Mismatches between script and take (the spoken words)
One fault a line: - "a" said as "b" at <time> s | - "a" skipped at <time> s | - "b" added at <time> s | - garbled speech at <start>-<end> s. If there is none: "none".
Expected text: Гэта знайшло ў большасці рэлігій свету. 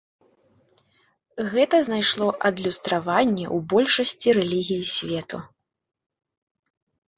- "адлюстраванне" added at 2.5 s